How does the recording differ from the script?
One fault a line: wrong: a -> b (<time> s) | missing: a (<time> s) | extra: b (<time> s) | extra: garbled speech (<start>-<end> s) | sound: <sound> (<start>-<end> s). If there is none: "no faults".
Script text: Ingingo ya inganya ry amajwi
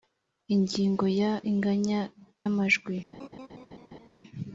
missing: ry (2.0 s)
sound: laugh (3.1-4.1 s)